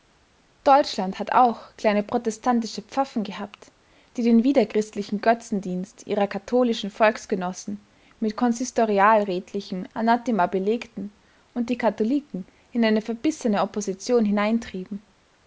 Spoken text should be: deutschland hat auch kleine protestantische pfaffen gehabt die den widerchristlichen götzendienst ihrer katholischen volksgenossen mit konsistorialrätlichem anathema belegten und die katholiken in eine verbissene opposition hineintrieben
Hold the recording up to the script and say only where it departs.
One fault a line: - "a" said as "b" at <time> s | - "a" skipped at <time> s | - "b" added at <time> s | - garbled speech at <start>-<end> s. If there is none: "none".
none